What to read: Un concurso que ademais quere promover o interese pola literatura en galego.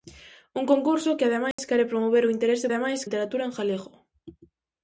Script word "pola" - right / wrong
wrong